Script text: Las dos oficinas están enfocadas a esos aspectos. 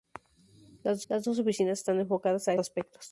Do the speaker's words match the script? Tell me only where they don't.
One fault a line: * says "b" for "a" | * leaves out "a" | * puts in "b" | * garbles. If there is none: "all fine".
* puts in "las"
* leaves out "esos"